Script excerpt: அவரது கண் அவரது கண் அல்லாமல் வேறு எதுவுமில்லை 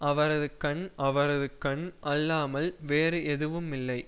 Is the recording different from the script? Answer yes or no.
no